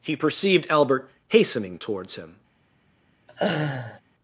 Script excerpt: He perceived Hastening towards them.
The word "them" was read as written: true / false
false